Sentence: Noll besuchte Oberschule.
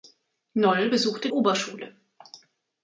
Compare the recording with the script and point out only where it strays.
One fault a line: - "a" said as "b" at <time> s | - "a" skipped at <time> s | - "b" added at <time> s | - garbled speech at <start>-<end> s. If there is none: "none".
none